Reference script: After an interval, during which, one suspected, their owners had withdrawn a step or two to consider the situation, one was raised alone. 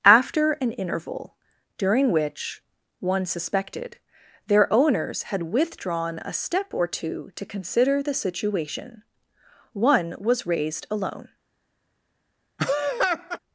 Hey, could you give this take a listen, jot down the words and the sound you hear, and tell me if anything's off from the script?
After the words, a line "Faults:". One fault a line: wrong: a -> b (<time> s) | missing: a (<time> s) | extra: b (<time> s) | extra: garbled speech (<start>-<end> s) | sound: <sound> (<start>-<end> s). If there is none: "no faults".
After an interval, during which, one suspected, their owners had withdrawn a step or two to consider the situation, one was raised alone.
Faults:
sound: laugh (12.6-13.4 s)